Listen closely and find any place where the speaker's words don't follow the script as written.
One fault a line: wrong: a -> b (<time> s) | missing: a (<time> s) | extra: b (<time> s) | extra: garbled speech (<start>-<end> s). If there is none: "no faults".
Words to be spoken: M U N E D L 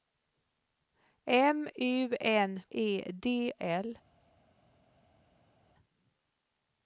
no faults